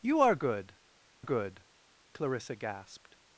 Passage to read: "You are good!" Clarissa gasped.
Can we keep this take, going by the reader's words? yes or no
no